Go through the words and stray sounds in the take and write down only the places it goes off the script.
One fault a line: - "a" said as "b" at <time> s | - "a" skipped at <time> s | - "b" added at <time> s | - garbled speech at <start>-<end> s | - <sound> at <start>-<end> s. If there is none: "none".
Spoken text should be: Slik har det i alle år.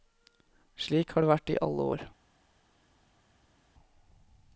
- "vært" added at 1.3 s